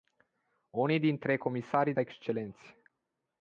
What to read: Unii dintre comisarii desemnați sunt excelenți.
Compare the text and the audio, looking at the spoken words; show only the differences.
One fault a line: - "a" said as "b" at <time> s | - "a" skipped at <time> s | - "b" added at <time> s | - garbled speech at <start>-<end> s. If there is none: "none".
- "desemnați sunt" skipped at 1.9 s